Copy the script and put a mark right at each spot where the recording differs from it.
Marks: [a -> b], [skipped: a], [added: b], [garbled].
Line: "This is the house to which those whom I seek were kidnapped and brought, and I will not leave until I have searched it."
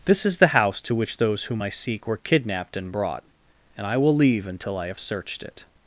"This is the house to which those whom I seek were kidnapped and brought, and I will [skipped: not] leave until I have searched it."